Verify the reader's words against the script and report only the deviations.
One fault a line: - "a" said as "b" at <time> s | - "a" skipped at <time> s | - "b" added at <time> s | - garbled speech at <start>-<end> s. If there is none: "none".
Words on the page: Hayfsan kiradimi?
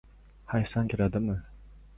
none